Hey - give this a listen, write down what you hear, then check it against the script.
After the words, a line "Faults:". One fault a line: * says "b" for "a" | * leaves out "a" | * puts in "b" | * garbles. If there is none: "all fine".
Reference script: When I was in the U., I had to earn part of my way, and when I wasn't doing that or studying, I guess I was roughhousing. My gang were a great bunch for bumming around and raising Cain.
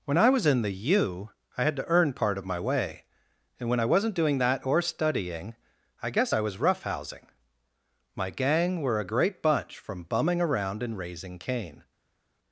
When I was in the U., I had to earn part of my way, and when I wasn't doing that or studying, I guess I was roughhousing. My gang were a great bunch from bumming around and raising Cain.
Faults:
* says "from" for "for"